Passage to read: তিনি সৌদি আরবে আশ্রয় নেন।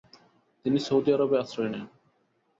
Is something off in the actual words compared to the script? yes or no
no